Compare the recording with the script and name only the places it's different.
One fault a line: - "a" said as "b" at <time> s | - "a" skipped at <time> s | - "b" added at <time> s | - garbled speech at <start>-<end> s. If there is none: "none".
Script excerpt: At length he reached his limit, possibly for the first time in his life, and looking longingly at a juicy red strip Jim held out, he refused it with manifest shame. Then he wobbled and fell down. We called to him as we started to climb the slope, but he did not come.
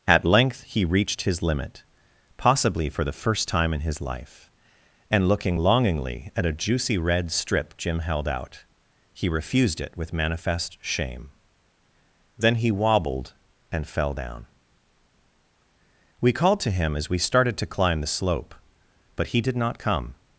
none